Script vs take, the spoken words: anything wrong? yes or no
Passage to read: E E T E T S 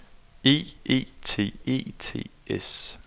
no